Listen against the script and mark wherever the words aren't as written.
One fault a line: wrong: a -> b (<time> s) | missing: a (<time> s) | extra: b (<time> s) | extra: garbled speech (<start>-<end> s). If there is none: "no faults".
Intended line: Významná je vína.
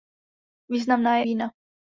no faults